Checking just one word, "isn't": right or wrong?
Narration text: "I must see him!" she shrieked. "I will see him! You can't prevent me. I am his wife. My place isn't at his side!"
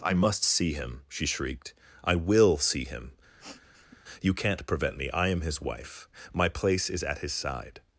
wrong